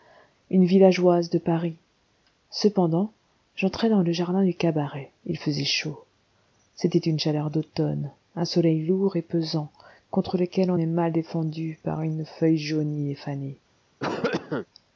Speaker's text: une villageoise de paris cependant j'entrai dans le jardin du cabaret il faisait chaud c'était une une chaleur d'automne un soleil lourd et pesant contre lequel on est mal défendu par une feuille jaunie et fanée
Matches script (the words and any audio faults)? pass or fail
fail